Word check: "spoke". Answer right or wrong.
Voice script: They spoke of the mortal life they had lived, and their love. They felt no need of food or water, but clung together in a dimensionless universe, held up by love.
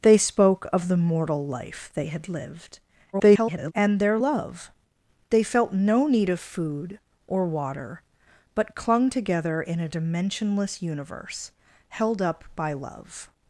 right